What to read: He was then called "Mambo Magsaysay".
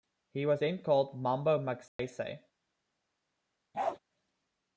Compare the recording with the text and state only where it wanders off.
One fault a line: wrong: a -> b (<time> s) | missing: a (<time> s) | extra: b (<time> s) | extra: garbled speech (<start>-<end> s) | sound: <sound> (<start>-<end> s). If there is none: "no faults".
sound: dropout (1.9-2.0 s)
sound: bark (3.7-4.0 s)